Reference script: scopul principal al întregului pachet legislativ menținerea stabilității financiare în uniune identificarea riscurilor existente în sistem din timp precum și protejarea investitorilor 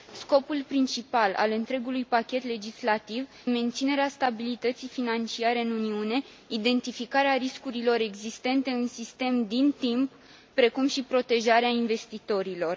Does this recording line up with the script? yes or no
yes